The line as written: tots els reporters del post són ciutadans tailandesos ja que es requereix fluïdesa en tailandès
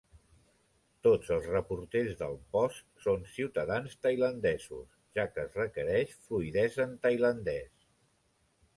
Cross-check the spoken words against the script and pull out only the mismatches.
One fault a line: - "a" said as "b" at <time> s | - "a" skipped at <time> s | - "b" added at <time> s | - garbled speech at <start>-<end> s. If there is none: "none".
none